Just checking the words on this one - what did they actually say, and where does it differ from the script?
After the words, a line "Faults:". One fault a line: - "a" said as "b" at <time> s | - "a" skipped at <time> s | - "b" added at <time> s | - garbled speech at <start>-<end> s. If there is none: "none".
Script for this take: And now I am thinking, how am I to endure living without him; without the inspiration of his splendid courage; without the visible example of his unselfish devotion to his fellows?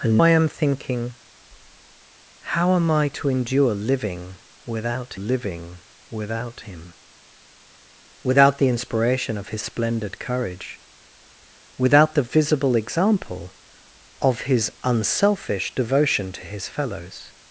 And I am thinking, how am I to endure living without living without him; without the inspiration of his splendid courage; without the visible example of his unselfish devotion to his fellows?
Faults:
- "now" skipped at 0.2 s
- "living without" added at 5.1 s